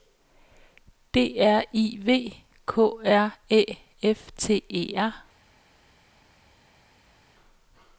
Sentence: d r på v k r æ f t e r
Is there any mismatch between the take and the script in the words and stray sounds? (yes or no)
yes